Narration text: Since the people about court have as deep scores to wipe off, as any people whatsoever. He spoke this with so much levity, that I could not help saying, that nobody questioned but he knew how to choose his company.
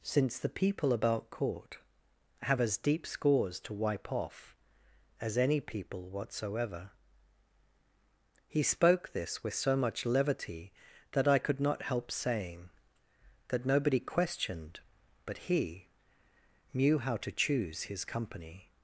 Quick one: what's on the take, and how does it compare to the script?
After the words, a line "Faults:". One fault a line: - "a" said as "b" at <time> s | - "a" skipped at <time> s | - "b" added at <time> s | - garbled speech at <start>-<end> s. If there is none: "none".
Since the people about court have as deep scores to wipe off, as any people whatsoever. He spoke this with so much levity, that I could not help saying, that nobody questioned but he knew how to choose his company.
Faults:
none